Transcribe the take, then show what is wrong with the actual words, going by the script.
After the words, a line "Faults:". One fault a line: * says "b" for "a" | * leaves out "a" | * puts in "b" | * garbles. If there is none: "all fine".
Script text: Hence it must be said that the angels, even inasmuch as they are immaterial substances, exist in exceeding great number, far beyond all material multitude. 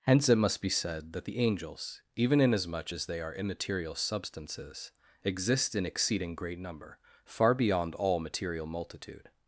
Hence it must be said that the angels, even inasmuch as they are immaterial substances, exist in exceeding great number, far beyond all material multitude.
Faults:
all fine